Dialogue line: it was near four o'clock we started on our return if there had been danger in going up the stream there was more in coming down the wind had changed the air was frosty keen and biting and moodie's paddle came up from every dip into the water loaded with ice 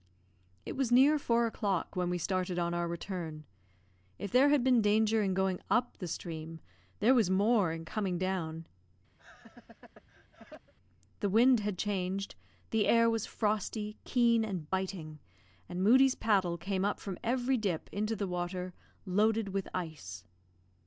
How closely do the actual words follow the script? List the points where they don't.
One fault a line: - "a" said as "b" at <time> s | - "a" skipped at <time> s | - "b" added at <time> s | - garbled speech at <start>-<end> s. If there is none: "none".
- "when" added at 1.9 s